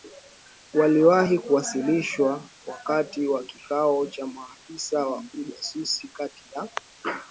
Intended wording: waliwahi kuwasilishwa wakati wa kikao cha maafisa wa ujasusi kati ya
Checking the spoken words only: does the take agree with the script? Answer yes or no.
yes